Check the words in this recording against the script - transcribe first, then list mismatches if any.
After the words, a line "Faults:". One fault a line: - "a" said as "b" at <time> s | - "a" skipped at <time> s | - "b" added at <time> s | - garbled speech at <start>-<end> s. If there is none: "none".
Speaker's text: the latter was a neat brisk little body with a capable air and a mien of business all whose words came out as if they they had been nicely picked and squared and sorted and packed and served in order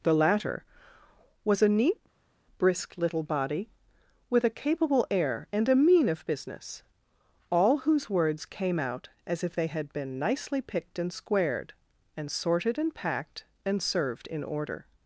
the latter was a neat brisk little body with a capable air and a mien of business all whose words came out as if they had been nicely picked and squared and sorted and packed and served in order
Faults:
- "they" skipped at 9.7 s